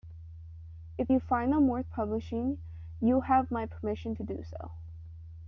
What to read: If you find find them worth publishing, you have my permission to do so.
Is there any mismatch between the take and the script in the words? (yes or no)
yes